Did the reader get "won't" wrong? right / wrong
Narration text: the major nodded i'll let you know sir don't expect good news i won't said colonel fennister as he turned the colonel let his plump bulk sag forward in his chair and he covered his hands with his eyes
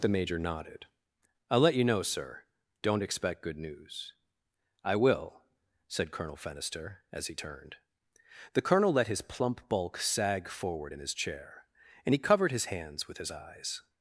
wrong